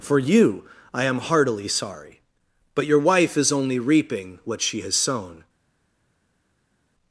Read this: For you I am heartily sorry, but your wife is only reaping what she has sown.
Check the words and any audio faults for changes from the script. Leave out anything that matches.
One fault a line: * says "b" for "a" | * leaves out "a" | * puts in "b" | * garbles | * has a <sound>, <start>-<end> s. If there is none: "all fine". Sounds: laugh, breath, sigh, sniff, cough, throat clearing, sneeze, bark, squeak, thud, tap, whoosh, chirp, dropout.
all fine